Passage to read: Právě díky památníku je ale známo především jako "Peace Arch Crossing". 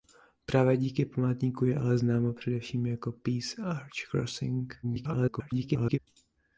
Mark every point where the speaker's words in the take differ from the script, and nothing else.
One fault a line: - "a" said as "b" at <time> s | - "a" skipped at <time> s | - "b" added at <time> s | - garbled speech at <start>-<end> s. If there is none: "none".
- garbled speech at 4.8-6.0 s